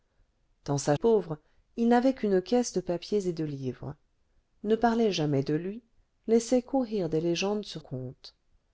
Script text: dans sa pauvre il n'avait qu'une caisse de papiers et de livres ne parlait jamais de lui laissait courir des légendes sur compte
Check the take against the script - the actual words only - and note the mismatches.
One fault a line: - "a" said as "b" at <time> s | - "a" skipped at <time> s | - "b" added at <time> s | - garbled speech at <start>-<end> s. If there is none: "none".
none